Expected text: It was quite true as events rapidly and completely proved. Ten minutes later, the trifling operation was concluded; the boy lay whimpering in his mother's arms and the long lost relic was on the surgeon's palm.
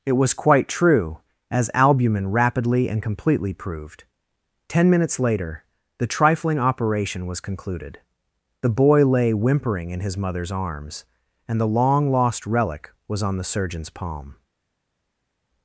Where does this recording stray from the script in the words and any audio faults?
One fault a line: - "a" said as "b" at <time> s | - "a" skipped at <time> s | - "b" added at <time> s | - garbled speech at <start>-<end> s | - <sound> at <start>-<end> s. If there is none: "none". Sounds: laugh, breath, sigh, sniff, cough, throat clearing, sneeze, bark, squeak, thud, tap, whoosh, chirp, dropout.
- "events" said as "albumin" at 1.8 s